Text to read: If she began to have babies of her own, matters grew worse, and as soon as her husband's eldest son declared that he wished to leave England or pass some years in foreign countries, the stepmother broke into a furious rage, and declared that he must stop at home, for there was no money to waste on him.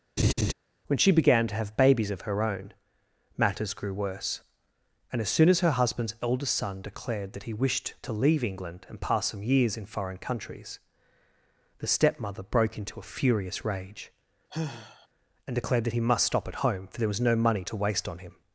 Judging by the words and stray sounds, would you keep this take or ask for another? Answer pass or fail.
fail